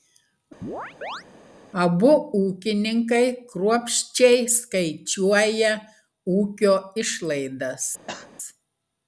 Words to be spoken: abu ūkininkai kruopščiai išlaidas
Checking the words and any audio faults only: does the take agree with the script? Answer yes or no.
no